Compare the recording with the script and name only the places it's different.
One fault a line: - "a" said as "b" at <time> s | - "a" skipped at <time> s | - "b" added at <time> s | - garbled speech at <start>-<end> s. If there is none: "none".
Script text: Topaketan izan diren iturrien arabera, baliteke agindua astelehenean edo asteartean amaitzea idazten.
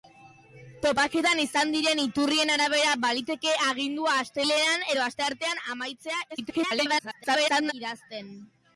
- garbled speech at 6.3-7.7 s